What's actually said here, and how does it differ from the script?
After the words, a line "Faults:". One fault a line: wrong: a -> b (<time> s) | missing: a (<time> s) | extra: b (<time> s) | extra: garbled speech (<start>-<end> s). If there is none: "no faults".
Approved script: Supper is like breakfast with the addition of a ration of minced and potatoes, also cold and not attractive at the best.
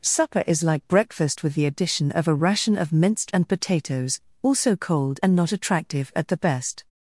Supper is like breakfast with the addition of a ration of minced and potatoes, also cold and not attractive at the best.
Faults:
no faults